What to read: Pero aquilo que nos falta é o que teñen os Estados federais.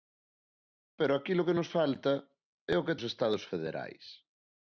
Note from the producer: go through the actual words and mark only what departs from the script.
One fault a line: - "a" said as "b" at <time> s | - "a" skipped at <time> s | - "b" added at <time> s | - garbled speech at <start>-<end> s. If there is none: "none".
- "teñen" skipped at 3.0 s